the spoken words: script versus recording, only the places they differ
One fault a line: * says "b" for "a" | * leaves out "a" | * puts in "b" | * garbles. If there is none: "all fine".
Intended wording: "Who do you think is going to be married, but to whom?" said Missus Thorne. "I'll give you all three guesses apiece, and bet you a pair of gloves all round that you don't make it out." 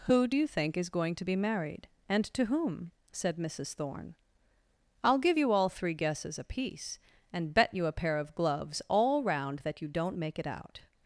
* says "and" for "but"